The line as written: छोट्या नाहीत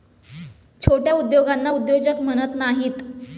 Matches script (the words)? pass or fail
fail